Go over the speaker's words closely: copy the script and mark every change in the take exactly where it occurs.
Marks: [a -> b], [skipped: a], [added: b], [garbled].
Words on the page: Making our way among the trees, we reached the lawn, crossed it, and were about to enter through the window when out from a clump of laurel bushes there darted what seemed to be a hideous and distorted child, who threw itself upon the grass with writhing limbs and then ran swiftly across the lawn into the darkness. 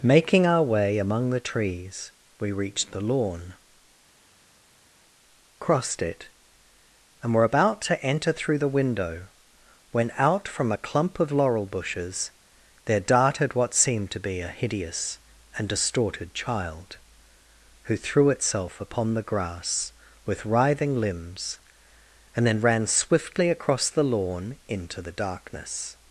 Making our way among the trees, we reached the lawn, crossed it, and were about to enter through the window when out from a clump of laurel bushes there darted what seemed to be a hideous and distorted child, who threw itself upon the grass with writhing limbs and then ran swiftly across the lawn into the darkness.